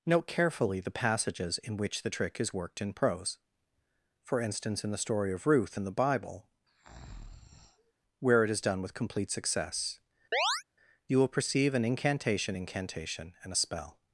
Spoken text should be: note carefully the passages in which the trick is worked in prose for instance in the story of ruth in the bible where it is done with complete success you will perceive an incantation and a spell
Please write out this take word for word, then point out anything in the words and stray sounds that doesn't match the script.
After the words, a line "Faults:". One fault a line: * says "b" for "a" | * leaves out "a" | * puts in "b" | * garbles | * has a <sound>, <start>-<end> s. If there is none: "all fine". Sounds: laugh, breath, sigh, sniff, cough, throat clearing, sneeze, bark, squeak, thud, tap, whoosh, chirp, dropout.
note carefully the passages in which the trick is worked in prose for instance in the story of ruth in the bible where it is done with complete success you will perceive an incantation incantation and a spell
Faults:
* has a breath, 6.7-7.9 s
* has a chirp, 10.3-10.6 s
* puts in "incantation"